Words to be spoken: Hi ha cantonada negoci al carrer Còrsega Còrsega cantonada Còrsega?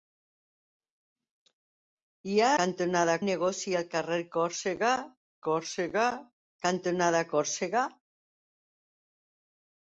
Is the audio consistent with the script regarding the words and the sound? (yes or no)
yes